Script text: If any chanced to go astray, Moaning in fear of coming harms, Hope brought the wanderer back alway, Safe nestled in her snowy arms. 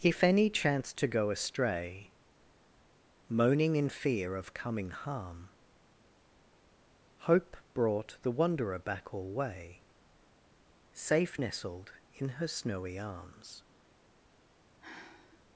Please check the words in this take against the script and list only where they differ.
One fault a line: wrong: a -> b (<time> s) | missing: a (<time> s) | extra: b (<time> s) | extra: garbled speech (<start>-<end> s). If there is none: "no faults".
wrong: harms -> harm (4.9 s)